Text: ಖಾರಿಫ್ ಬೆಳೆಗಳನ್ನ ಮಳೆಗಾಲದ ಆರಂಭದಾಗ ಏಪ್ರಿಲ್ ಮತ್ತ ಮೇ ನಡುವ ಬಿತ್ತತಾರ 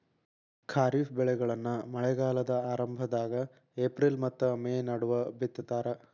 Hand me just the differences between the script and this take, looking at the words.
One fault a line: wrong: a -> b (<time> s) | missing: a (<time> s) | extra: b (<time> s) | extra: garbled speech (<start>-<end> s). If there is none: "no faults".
no faults